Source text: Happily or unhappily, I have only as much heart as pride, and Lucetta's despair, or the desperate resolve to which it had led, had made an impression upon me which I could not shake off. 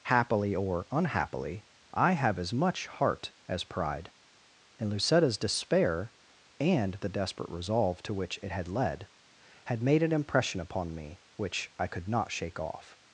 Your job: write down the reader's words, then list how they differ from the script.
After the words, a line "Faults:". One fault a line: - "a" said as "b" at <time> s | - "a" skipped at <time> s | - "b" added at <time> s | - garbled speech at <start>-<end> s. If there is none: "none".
Happily or unhappily, I have as much heart as pride, and Lucetta's despair, and the desperate resolve to which it had led, had made an impression upon me which I could not shake off.
Faults:
- "only" skipped at 2.4 s
- "or" said as "and" at 6.6 s